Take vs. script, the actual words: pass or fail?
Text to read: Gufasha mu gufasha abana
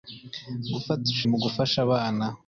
pass